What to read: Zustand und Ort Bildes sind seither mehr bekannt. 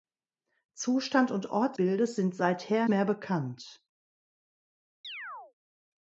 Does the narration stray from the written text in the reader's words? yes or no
no